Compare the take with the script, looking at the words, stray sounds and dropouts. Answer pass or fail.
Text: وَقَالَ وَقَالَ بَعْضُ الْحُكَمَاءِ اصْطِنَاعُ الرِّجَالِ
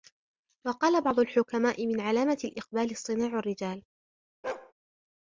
fail